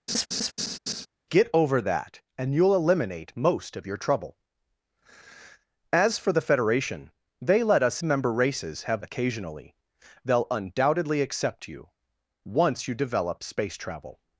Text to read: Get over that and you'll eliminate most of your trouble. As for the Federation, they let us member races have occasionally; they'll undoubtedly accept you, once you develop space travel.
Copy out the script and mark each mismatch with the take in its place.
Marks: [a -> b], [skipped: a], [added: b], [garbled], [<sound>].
[laugh] Get over that and you'll eliminate most of your trouble. As for the Federation, they let us member races have occasionally; they'll undoubtedly accept you, once you develop space travel.